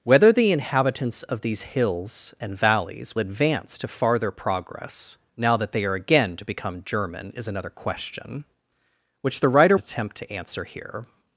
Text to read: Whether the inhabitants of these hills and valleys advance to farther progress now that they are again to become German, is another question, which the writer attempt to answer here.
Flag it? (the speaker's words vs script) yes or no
no